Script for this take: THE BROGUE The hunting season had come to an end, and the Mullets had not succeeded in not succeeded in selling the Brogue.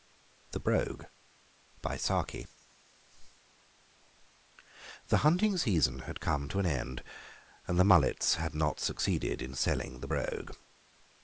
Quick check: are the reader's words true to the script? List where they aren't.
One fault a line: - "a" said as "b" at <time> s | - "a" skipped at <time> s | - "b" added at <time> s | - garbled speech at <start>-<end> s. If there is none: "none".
- "not succeeded in" skipped at 9.5 s